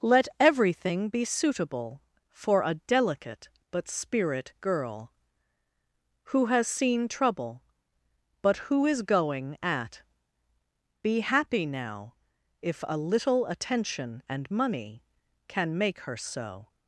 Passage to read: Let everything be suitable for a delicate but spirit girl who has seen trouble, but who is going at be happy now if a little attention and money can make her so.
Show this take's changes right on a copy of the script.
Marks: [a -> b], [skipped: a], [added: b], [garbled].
Let everything be suitable for a delicate but spirit girl who has seen trouble, but who is going at be happy now if a little attention and money can make her so.